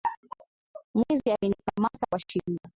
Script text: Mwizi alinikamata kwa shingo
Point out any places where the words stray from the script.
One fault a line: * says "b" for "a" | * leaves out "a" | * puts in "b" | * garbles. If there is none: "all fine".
all fine